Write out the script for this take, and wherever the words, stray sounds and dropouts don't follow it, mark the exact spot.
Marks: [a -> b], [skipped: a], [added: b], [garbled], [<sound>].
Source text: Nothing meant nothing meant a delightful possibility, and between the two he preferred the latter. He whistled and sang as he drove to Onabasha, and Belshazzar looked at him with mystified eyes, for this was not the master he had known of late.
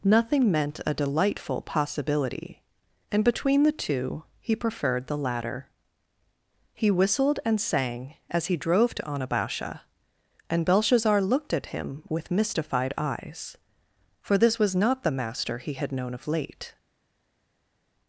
Nothing meant [skipped: nothing meant] a delightful possibility, and between the two he preferred the latter. He whistled and sang as he drove to Onabasha, and Belshazzar looked at him with mystified eyes, for this was not the master he had known of late.